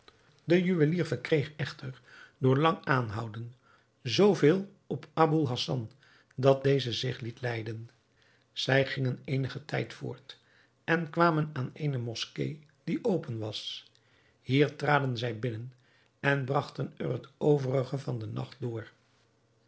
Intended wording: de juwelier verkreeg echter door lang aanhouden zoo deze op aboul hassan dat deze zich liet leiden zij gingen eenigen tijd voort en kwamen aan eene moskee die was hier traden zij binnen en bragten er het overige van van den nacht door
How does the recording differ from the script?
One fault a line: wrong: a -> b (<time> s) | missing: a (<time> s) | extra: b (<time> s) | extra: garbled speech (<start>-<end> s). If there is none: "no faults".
wrong: deze -> veel (4.3 s)
extra: open (13.0 s)
missing: van (18.2 s)